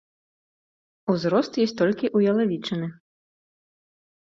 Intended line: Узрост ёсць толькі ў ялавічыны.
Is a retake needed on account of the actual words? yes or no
no